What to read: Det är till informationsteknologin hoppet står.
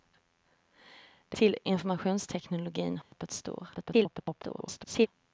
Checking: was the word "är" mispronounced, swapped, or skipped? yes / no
yes